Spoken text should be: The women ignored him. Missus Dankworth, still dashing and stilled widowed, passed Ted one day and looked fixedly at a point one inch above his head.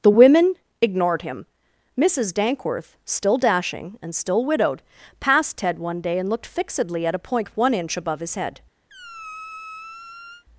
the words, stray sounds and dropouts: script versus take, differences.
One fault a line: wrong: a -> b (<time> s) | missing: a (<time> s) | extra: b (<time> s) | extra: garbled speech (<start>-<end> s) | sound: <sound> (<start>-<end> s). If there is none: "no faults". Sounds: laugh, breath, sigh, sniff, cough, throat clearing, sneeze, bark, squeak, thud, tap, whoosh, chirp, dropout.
wrong: stilled -> still (4.1 s)
sound: squeak (8.9-10.4 s)